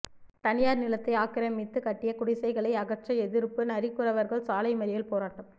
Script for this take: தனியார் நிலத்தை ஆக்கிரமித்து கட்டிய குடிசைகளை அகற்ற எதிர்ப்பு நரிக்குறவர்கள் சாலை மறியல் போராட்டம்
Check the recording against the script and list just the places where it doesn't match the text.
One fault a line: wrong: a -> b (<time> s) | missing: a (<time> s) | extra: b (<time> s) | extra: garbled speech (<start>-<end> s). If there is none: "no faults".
no faults